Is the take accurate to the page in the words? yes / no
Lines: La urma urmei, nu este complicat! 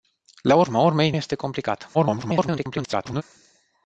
no